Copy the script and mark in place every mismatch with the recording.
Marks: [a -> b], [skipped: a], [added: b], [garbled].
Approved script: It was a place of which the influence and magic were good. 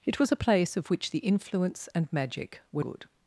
It was a place of which the influence and magic were good.